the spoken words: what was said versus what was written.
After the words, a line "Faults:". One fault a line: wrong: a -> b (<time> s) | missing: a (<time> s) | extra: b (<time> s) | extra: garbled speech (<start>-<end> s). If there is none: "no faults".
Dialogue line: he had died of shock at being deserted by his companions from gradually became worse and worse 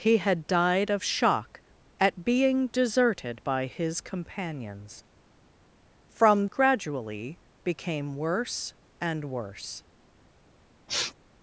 he had died of shock at being deserted by his companions from gradually became worse and worse
Faults:
no faults